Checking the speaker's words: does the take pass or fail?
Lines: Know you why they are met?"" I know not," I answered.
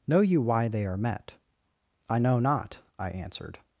pass